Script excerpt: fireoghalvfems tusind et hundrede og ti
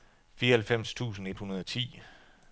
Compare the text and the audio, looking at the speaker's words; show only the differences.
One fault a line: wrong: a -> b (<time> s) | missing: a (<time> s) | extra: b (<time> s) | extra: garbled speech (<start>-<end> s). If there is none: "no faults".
no faults